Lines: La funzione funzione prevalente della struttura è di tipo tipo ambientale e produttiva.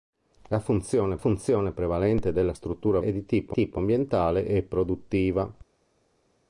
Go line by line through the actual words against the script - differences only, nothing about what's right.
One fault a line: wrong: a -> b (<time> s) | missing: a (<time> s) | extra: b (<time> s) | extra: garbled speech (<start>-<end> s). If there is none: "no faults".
no faults